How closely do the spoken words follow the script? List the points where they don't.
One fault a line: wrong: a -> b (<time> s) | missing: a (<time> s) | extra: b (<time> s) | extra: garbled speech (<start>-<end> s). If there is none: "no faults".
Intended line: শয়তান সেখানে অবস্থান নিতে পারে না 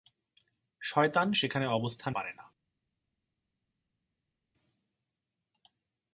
missing: নিতে (2.2 s)